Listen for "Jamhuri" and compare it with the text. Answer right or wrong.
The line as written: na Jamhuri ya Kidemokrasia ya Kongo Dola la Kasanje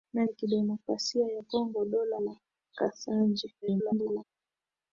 wrong